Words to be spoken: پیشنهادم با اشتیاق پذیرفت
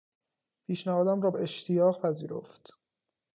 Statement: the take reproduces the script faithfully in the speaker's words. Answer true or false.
false